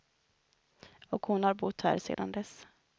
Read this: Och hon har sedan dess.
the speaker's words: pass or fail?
fail